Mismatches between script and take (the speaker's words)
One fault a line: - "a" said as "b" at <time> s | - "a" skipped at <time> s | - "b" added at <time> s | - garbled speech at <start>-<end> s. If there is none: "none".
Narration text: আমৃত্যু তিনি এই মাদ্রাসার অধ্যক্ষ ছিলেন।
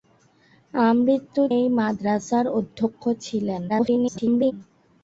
- "তিনি" skipped at 1.4 s
- garbled speech at 3.7-4.5 s